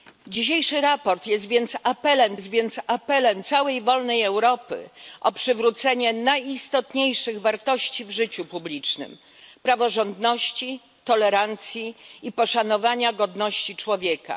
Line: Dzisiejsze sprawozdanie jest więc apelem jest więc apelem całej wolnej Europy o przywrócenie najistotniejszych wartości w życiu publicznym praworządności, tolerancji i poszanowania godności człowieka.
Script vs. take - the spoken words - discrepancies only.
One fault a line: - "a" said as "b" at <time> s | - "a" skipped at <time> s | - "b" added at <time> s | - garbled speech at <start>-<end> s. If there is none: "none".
none